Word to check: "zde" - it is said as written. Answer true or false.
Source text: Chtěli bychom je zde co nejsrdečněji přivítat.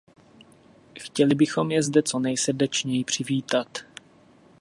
true